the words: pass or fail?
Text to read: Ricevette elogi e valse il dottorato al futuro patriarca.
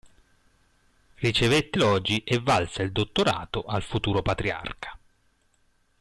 pass